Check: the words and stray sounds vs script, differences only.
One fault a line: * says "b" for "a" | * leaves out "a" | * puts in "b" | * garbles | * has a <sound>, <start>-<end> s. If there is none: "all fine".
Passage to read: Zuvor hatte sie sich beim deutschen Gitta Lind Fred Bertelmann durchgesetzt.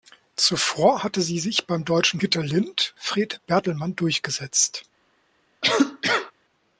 * has a cough, 5.6-6.3 s